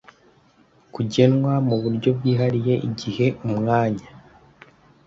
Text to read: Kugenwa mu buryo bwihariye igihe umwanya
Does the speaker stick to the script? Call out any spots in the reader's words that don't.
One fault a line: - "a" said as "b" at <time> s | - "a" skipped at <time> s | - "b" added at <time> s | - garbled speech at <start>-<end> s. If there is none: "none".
none